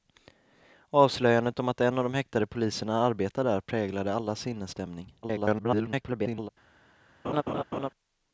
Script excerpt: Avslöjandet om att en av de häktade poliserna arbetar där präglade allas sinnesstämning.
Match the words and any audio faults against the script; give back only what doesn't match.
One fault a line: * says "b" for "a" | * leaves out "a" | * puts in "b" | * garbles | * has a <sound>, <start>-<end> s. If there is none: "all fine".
* garbles
* has a laugh, 7.2-7.9 s